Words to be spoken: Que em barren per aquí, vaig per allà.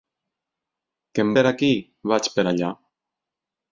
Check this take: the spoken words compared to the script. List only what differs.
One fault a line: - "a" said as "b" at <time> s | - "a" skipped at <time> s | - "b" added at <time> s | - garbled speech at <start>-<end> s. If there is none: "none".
- "barren" skipped at 1.3 s